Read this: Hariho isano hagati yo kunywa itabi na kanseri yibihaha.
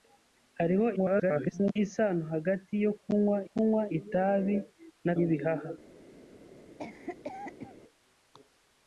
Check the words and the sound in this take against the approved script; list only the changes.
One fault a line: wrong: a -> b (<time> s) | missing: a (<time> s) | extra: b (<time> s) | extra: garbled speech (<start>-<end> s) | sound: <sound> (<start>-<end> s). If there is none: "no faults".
extra: garbled speech (1.0-1.8 s)
extra: kunywa (3.5 s)
missing: kanseri (5.1 s)
sound: cough (6.8-7.8 s)